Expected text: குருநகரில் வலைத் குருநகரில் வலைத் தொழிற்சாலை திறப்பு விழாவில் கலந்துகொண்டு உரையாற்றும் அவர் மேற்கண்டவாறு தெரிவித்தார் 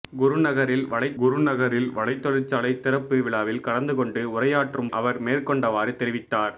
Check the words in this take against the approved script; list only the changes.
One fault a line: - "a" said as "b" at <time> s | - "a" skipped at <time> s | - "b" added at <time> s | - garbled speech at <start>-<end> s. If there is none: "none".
none